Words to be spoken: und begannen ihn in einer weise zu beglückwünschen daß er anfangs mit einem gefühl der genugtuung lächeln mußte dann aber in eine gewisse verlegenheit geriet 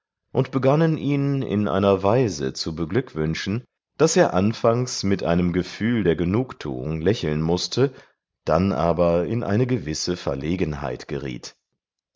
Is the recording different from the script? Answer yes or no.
no